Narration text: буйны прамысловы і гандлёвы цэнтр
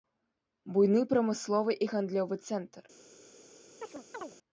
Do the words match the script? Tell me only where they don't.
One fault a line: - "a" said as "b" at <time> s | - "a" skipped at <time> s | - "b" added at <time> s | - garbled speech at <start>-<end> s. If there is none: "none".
none